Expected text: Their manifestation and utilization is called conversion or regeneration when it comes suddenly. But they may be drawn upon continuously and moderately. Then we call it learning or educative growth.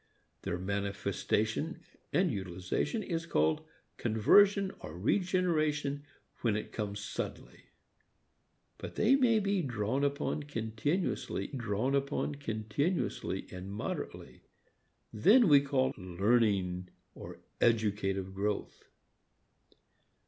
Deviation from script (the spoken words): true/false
true